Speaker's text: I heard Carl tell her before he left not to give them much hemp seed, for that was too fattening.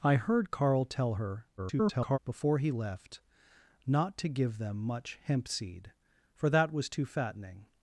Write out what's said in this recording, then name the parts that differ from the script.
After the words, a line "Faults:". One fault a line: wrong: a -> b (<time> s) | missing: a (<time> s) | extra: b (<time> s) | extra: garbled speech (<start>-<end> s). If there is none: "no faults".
I heard Carl tell her [garbled] before he left not to give them much hemp seed, for that was too fattening.
Faults:
extra: garbled speech (1.6-2.2 s)